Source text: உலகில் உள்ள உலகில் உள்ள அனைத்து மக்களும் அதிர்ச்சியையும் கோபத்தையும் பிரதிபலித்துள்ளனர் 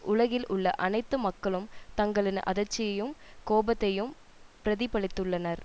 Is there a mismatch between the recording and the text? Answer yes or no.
yes